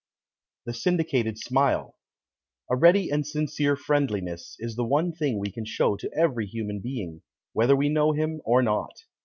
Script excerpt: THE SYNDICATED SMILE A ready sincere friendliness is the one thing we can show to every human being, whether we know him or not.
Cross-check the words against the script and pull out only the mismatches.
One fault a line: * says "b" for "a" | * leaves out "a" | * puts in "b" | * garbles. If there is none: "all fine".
* puts in "and"